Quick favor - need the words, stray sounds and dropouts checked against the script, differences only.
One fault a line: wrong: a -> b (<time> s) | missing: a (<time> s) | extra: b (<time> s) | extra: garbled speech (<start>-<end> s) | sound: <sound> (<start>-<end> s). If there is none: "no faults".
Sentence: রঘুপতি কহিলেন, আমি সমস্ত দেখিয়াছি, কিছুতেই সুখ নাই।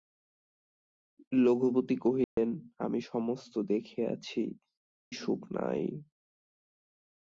sound: dropout (2.2-2.4 s)
missing: কিছুতেই (4.4 s)